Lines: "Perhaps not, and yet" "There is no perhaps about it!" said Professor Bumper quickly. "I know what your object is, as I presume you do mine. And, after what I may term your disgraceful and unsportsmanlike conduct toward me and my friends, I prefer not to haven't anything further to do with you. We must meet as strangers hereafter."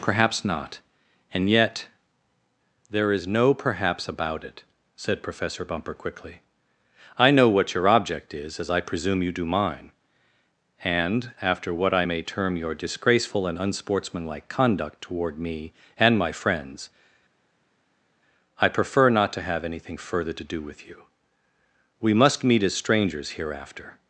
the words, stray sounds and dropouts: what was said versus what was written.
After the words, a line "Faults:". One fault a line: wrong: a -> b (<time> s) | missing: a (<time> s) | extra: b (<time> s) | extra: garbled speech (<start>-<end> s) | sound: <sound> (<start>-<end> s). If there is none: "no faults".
"Perhaps not, and yet" "There is no perhaps about it!" said Professor Bumper quickly. "I know what your object is, as I presume you do mine. And, after what I may term your disgraceful and unsportsmanlike conduct toward me and my friends, I prefer not to have anything further to do with you. We must meet as strangers hereafter."
Faults:
wrong: haven't -> have (19.4 s)